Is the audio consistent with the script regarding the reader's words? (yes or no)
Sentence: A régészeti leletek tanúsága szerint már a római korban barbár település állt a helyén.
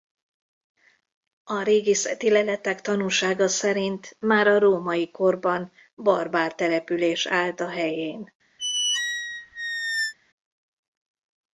yes